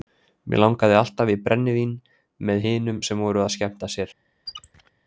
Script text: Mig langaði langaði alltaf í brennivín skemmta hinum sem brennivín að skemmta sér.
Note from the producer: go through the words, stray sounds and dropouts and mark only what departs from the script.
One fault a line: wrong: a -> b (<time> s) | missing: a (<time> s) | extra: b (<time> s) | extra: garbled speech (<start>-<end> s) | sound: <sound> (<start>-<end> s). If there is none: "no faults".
missing: langaði (1.0 s)
wrong: skemmta -> með (2.5 s)
wrong: brennivín -> voru (3.3 s)
sound: squeak (4.5-4.9 s)